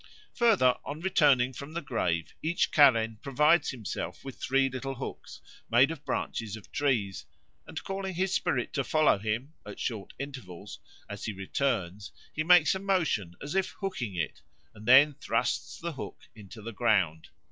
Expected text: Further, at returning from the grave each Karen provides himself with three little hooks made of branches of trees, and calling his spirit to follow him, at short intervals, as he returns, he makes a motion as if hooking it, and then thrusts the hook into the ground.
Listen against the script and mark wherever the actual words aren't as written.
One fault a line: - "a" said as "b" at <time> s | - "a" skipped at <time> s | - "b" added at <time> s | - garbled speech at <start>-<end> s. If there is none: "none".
- "at" said as "on" at 0.8 s